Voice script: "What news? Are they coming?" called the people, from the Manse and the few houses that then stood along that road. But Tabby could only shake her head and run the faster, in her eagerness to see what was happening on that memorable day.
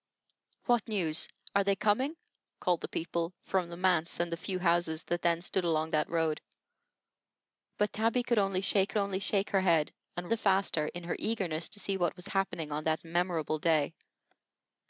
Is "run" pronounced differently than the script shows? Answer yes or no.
yes